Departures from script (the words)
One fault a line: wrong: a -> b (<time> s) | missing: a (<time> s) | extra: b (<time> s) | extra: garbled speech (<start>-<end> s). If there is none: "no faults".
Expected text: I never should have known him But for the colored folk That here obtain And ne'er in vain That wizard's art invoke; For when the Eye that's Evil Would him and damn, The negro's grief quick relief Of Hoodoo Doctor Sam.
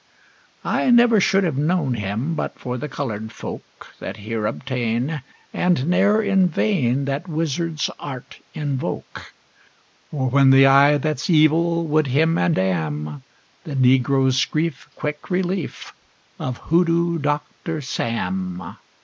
no faults